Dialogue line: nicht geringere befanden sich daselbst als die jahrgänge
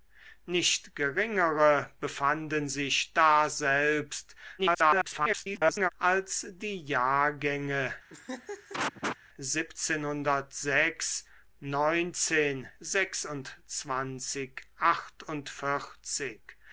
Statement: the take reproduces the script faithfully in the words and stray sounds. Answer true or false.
false